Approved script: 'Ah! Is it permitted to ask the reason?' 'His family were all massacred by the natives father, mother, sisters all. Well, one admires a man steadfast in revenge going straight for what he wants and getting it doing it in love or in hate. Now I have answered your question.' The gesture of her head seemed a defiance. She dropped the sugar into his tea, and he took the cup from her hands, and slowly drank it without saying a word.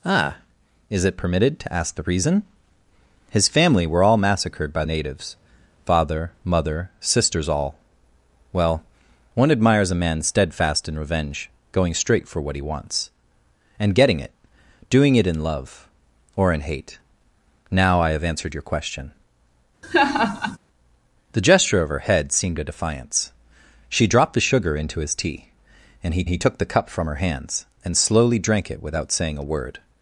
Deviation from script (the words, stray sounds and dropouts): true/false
true